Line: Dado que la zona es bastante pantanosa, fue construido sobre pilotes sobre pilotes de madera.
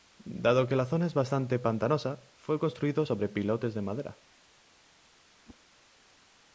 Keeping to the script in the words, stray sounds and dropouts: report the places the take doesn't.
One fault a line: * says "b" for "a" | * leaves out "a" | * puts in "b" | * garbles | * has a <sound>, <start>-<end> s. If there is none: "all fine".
* leaves out "sobre pilotes"
* has a whoosh, 5.5-5.6 s